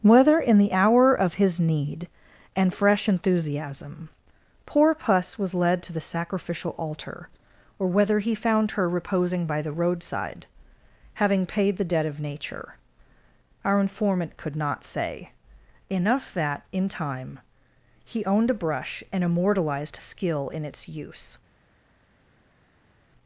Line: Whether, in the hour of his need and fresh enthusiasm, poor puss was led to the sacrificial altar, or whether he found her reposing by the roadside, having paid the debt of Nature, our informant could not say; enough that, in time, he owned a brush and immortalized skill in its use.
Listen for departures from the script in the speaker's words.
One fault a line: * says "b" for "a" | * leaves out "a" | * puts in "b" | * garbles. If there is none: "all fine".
all fine